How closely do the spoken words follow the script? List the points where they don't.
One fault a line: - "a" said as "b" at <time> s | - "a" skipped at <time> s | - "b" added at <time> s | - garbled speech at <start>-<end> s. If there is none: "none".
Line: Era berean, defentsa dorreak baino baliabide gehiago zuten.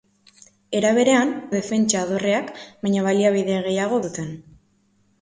none